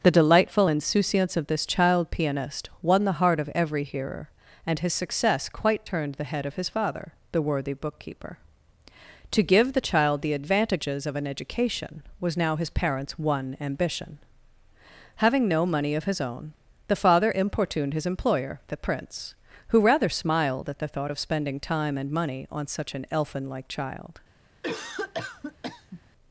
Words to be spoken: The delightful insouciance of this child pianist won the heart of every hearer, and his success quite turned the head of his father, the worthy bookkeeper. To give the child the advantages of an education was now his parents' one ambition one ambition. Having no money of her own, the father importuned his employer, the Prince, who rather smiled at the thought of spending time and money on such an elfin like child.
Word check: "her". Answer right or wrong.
wrong